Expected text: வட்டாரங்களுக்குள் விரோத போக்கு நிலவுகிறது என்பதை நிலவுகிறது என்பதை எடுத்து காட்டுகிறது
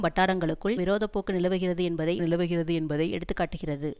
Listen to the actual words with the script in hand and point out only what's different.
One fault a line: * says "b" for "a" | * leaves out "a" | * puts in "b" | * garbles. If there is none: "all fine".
all fine